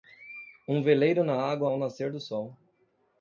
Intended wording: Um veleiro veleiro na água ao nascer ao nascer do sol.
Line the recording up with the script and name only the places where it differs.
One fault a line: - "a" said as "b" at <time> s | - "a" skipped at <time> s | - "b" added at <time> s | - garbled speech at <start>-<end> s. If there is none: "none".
- "veleiro" skipped at 1.2 s
- "ao nascer" skipped at 2.1 s